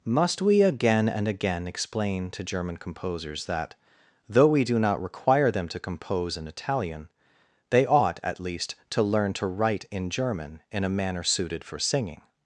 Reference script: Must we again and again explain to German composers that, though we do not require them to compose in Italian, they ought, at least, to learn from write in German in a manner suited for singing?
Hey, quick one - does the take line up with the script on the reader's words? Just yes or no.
no